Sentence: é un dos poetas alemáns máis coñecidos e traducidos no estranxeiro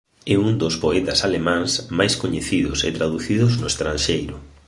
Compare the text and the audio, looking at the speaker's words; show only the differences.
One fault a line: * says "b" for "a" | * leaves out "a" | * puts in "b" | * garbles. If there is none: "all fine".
all fine